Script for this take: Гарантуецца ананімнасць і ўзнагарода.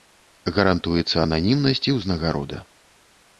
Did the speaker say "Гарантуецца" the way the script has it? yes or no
yes